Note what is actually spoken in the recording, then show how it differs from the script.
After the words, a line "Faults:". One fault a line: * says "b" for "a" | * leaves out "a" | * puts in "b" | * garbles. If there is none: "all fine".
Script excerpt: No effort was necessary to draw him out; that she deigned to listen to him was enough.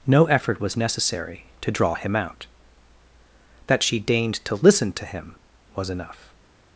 No effort was necessary to draw him out; that she deigned to listen to him was enough.
Faults:
all fine